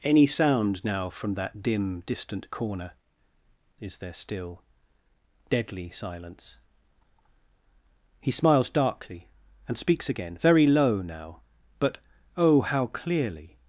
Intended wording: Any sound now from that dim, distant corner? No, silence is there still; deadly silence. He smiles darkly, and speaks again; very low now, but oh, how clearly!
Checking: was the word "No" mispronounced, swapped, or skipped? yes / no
yes